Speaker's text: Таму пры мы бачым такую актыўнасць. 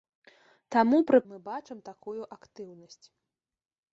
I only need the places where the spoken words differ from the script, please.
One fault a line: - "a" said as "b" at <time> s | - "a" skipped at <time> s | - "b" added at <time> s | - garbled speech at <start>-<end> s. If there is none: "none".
none